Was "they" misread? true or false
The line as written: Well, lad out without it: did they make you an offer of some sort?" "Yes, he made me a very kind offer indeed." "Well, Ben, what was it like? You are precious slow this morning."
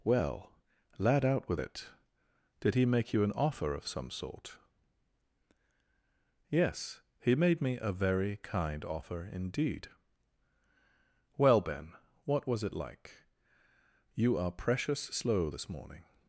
true